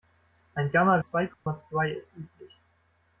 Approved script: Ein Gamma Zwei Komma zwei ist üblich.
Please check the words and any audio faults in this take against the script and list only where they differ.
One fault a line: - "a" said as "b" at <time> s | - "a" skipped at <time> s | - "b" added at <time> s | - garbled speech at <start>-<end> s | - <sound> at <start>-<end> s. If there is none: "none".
- dropout at 1.3-1.5 s